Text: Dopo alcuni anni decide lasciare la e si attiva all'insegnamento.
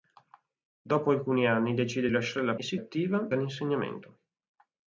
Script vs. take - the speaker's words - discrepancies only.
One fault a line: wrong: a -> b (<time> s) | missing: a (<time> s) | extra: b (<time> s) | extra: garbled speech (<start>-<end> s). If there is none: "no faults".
no faults